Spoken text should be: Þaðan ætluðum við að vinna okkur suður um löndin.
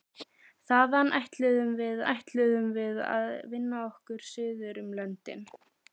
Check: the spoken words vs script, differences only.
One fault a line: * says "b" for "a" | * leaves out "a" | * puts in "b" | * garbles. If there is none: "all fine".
* puts in "ætluðum við"